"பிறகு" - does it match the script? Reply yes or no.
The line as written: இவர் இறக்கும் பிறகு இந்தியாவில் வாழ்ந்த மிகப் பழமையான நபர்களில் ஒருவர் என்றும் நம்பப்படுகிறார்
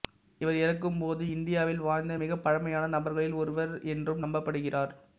no